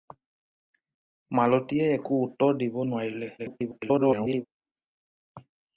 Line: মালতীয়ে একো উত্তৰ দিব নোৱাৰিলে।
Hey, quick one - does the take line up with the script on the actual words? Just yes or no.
no